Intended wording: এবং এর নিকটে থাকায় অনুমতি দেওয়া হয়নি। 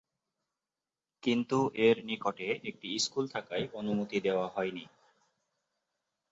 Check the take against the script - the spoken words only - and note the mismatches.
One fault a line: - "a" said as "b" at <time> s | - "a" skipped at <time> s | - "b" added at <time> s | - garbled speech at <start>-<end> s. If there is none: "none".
- "এবং" said as "কিন্তু" at 1.2 s
- "একটি স্কুল" added at 2.6 s